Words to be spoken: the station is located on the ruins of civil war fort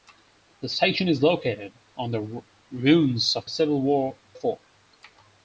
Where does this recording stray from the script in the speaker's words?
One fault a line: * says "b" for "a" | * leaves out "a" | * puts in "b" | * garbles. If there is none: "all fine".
all fine